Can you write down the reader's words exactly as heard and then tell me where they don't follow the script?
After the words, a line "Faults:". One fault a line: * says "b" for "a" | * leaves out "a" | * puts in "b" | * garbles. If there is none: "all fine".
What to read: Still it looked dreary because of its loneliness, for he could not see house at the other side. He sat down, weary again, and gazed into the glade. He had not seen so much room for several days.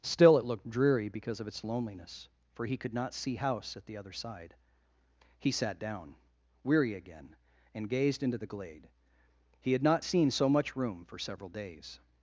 Still it looked dreary because of its loneliness, for he could not see house at the other side. He sat down, weary again, and gazed into the glade. He had not seen so much room for several days.
Faults:
all fine